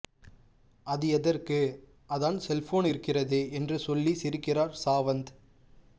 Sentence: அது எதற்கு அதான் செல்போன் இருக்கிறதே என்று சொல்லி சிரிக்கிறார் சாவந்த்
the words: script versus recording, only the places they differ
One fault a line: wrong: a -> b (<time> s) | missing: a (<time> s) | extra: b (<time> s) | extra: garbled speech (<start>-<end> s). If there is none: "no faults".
no faults